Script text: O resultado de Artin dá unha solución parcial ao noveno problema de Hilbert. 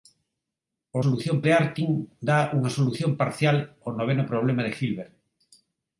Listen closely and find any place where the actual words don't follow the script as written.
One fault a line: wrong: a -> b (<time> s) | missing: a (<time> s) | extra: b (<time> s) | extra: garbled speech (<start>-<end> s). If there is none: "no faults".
wrong: resultado -> solución (1.0 s)